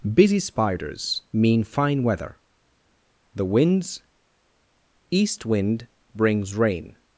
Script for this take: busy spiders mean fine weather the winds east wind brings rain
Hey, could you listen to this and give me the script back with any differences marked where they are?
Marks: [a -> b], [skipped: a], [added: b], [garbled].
busy spiders mean fine weather the winds east wind brings rain